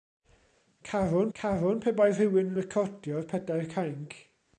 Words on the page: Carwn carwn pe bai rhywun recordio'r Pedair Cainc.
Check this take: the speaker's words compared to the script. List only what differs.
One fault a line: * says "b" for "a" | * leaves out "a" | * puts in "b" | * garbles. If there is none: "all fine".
all fine